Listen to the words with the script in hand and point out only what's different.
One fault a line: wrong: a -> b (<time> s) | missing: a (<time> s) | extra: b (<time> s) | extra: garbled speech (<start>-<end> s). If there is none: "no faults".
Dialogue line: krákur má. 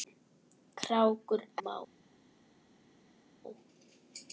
no faults